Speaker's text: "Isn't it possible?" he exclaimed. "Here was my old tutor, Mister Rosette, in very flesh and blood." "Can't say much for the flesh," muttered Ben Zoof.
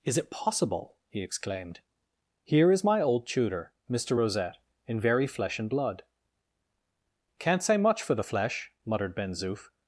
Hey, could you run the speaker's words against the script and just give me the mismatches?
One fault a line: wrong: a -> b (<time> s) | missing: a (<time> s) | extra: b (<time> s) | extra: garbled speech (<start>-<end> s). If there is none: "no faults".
wrong: Isn't -> Is (0.0 s)
wrong: was -> is (2.7 s)